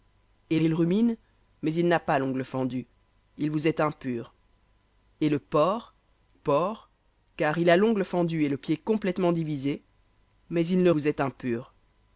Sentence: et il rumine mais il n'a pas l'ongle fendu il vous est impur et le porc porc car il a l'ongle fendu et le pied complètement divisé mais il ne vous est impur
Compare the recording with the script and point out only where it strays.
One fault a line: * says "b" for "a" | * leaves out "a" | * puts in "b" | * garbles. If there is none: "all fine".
all fine